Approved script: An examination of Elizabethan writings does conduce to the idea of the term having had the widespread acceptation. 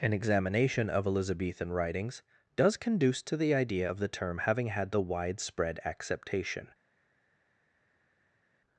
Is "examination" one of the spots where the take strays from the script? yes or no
no